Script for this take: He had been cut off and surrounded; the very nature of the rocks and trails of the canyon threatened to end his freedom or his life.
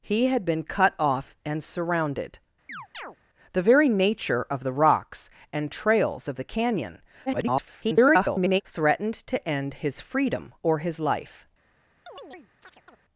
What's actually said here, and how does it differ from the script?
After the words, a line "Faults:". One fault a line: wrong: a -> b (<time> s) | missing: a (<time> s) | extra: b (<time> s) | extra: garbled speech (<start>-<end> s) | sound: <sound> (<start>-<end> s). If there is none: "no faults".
He had been cut off and surrounded; the very nature of the rocks and trails of the canyon [garbled] threatened to end his freedom or his life.
Faults:
sound: chirp (2.7-3.2 s)
extra: garbled speech (7.3-8.6 s)
sound: chirp (12.1-13.0 s)